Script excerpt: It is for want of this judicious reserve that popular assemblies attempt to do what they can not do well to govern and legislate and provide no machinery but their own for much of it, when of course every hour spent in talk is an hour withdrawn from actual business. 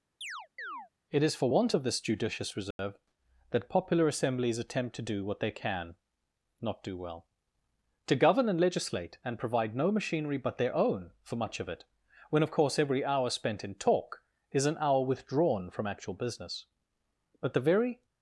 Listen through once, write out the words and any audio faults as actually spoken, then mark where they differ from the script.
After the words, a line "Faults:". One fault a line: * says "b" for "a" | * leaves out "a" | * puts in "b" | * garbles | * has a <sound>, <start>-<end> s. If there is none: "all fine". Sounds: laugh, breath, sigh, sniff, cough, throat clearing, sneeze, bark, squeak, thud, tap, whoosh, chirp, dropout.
It is for want of this judicious reserve that popular assemblies attempt to do what they can not do well to govern and legislate and provide no machinery but their own for much of it, when of course every hour spent in talk is an hour withdrawn from actual business. But the very
Faults:
* has a chirp, 0.2-0.9 s
* has a dropout, 2.7-2.8 s
* puts in "But the very"